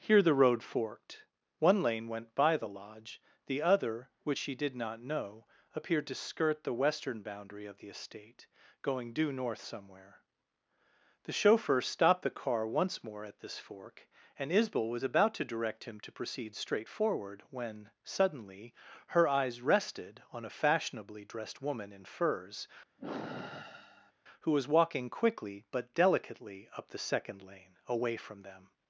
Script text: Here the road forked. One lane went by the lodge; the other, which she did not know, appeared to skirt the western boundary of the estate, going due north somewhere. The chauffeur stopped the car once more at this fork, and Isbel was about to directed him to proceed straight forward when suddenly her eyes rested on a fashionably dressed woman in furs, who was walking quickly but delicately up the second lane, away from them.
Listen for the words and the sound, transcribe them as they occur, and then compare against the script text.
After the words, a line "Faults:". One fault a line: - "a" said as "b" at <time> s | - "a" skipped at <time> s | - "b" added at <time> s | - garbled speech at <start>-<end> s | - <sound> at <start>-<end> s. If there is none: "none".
Here the road forked. One lane went by the lodge; the other, which she did not know, appeared to skirt the western boundary of the estate, going due north somewhere. The chauffeur stopped the car once more at this fork, and Isbel was about to direct him to proceed straight forward when suddenly her eyes rested on a fashionably dressed woman in furs, who was walking quickly but delicately up the second lane, away from them.
Faults:
- "directed" said as "direct" at 15.5 s
- sigh at 23.0-24.1 s